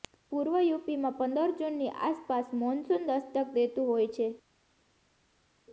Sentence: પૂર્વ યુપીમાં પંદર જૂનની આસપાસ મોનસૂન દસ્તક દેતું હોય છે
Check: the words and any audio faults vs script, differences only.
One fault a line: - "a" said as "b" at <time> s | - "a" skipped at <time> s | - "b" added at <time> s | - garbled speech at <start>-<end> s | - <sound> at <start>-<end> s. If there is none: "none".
none